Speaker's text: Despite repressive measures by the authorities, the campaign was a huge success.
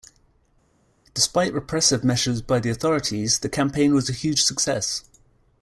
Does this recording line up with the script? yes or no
yes